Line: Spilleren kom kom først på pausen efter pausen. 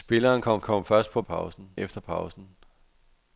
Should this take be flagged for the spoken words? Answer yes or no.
no